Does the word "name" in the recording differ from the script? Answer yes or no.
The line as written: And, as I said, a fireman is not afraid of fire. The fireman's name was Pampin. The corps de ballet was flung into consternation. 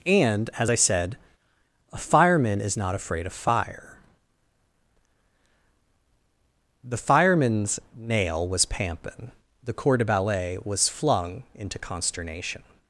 yes